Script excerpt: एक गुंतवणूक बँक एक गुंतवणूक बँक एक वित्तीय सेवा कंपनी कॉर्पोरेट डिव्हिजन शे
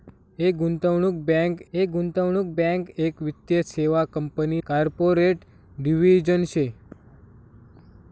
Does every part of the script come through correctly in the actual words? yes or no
yes